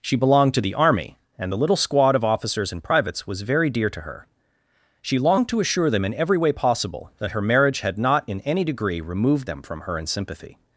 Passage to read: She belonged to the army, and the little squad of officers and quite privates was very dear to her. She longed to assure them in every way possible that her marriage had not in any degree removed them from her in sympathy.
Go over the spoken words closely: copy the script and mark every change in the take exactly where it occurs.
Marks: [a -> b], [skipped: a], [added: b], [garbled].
She belonged to the army, and the little squad of officers and [skipped: quite] privates was very dear to her. She longed to assure them in every way possible that her marriage had not in any degree removed them from her in sympathy.